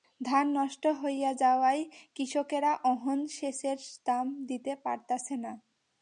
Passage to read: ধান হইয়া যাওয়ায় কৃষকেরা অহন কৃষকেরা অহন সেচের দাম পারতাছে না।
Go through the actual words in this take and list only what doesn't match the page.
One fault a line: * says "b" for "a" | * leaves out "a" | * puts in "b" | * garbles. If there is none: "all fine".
* puts in "নষ্ট"
* leaves out "কৃষকেরা অহন"
* puts in "দিতে"